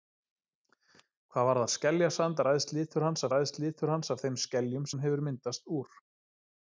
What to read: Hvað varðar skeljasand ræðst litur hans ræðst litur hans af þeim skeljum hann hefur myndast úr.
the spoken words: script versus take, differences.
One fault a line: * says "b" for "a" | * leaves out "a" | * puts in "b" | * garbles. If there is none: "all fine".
all fine